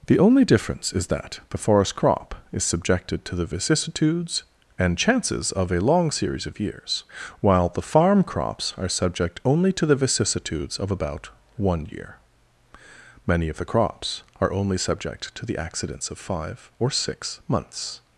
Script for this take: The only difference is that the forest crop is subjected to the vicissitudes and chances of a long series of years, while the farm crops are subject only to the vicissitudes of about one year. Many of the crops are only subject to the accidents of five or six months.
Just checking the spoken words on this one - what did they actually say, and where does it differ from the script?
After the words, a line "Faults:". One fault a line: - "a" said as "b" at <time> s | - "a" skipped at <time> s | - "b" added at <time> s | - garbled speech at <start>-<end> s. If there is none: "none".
The only difference is that the forest crop is subjected to the vicissitudes and chances of a long series of years, while the farm crops are subject only to the vicissitudes of about one year. Many of the crops are only subject to the accidents of five or six months.
Faults:
none